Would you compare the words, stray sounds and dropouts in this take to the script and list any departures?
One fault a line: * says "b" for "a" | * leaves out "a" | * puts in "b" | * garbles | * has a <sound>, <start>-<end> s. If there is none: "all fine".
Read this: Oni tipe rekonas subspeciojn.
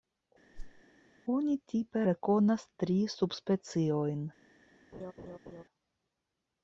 * has a whoosh, 0.5-0.8 s
* puts in "tri"
* has a laugh, 4.9-5.6 s